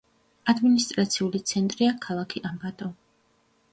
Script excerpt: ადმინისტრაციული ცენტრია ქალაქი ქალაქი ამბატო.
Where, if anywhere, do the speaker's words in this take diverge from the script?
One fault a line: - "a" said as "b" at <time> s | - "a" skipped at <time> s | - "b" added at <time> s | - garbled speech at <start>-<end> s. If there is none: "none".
- "ქალაქი" skipped at 2.4 s